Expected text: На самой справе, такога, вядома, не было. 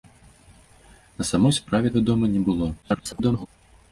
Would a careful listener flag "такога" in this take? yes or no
yes